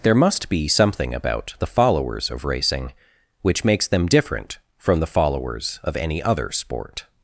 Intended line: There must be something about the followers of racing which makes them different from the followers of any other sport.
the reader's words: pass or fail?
pass